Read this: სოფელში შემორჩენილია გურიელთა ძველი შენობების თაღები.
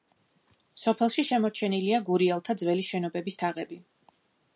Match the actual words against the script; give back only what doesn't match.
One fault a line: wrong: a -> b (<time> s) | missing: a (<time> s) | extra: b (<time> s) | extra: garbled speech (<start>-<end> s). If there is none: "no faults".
no faults